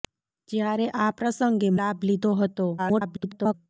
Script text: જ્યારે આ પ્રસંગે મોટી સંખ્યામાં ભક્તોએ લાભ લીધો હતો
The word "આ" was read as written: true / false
true